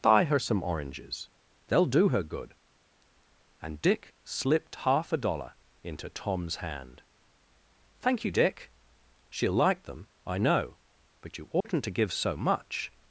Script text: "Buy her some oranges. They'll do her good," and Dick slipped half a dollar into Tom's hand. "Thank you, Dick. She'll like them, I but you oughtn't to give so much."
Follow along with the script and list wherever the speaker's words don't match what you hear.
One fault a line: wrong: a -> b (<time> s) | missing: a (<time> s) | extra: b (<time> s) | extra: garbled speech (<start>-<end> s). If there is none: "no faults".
extra: know (10.4 s)